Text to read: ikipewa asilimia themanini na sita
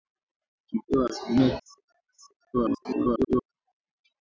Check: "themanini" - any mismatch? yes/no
yes